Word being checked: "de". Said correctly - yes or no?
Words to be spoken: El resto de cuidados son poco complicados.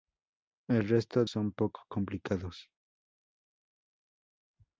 no